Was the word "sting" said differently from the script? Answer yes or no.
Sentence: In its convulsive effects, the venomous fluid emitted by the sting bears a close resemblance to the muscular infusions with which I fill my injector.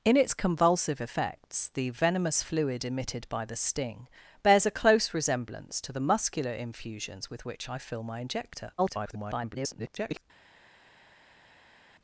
no